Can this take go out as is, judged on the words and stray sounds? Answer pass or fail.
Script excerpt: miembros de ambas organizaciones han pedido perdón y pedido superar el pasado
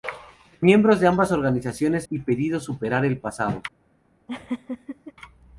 fail